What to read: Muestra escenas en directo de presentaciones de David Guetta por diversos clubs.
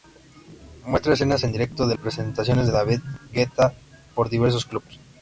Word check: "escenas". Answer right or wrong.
right